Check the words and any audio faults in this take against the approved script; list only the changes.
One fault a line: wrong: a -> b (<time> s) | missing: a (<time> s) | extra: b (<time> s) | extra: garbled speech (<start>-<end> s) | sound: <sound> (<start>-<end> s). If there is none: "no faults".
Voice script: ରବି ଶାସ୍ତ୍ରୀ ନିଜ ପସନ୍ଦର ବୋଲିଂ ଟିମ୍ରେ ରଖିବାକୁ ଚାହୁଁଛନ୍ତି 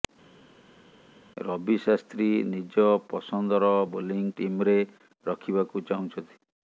no faults